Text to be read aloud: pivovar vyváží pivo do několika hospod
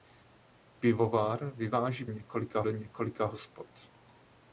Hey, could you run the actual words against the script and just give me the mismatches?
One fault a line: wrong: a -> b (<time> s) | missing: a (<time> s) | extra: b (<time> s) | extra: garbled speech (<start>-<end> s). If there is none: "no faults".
wrong: pivo -> několika (2.0 s)